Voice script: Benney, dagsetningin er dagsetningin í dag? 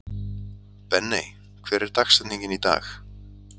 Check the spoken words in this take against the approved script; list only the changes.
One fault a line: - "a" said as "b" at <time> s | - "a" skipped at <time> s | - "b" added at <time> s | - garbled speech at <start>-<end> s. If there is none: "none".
- "dagsetningin" said as "hver" at 1.7 s